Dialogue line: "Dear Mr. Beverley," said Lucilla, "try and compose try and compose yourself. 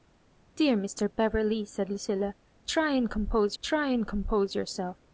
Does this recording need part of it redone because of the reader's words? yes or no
no